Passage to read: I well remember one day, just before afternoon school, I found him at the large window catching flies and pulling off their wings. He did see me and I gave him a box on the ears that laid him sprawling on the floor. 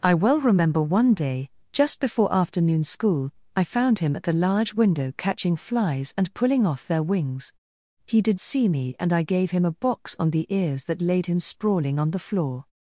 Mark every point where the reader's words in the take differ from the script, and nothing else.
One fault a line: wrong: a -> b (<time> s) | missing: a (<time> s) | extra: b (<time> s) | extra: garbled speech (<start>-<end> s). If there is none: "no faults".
no faults